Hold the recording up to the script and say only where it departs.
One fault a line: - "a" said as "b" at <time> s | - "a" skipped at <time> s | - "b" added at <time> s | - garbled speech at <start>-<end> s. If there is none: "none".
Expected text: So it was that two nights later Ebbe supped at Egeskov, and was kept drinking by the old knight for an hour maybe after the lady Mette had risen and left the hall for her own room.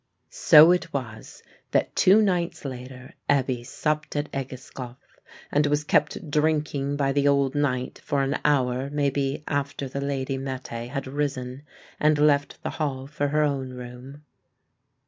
none